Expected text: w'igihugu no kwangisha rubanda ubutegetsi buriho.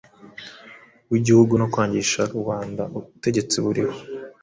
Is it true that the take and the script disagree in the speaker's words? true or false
false